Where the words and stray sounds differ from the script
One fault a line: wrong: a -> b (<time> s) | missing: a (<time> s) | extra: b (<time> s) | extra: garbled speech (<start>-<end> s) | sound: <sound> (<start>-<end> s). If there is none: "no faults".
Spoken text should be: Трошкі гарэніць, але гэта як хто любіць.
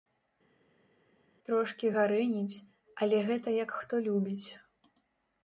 no faults